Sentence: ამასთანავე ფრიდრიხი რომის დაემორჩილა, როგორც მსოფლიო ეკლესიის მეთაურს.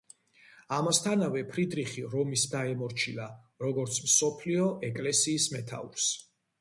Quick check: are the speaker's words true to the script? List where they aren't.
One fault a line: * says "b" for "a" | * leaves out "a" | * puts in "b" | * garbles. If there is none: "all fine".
all fine